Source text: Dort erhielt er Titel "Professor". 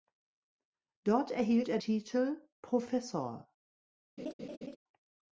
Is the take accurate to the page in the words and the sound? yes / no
no